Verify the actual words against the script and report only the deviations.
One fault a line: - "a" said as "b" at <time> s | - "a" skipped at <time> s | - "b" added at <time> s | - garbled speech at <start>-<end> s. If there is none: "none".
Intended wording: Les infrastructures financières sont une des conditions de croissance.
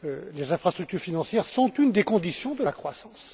- "la" added at 2.6 s